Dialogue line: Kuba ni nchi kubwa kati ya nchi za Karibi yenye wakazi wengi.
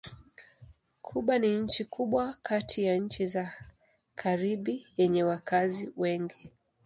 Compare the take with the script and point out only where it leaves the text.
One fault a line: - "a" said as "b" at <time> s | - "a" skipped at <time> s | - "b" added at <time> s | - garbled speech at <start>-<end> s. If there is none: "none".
none